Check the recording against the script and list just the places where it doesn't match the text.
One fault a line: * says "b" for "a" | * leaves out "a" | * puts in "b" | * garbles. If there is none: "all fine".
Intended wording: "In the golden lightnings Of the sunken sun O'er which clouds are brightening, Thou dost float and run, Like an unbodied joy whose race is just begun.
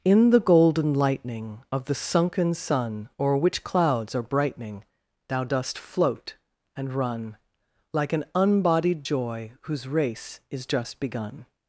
* says "lightning" for "lightnings"